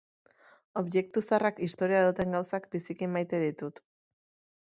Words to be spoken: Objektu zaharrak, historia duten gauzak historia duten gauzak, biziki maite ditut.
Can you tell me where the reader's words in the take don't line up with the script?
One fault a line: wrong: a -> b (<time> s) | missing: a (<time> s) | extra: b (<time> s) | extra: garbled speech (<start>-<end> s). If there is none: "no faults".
missing: historia duten gauzak (2.7 s)